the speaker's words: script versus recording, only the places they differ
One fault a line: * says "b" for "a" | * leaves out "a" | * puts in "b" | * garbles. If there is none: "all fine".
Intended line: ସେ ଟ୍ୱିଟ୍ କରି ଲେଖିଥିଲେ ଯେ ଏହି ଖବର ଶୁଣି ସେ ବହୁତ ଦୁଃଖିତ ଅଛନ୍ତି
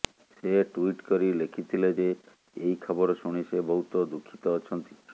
all fine